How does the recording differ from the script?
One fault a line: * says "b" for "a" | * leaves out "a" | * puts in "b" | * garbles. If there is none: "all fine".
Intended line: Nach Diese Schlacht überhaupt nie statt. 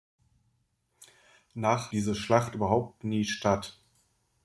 all fine